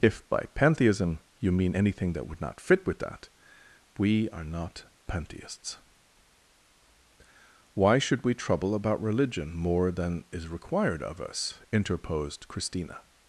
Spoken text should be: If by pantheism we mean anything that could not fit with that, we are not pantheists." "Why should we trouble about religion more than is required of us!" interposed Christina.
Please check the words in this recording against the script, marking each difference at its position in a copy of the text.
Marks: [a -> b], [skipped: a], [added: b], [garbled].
If by pantheism [we -> you] mean anything that [could -> would] not fit with that, we are not pantheists." "Why should we trouble about religion more than is required of us!" interposed Christina.